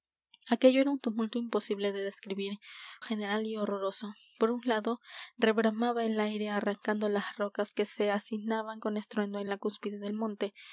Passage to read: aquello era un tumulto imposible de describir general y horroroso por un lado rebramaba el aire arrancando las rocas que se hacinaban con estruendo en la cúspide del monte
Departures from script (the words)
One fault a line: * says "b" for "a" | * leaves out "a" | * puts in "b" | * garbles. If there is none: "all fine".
all fine